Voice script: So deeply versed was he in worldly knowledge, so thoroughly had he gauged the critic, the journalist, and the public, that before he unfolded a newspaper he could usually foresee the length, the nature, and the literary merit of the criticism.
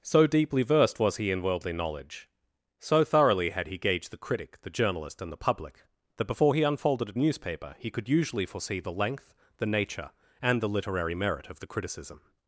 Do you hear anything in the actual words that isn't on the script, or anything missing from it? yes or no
no